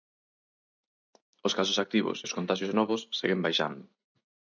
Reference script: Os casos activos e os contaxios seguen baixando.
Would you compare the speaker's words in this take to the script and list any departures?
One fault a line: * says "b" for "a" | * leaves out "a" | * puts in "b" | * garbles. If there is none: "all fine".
* puts in "novos"